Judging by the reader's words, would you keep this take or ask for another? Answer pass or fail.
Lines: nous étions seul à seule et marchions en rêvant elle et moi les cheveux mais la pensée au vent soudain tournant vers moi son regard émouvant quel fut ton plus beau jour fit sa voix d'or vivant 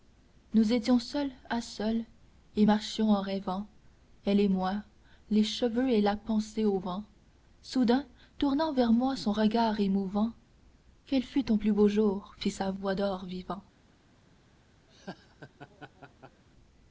fail